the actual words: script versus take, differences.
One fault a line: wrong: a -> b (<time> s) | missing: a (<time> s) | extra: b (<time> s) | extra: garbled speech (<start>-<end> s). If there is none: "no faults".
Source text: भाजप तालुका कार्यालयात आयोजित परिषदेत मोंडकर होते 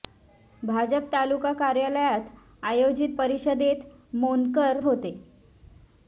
no faults